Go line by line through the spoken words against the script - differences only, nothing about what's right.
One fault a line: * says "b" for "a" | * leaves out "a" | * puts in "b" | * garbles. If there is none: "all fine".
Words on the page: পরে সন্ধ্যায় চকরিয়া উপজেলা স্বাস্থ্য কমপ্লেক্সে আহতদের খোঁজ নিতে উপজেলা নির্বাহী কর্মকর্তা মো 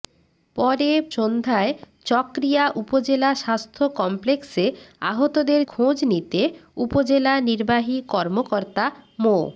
all fine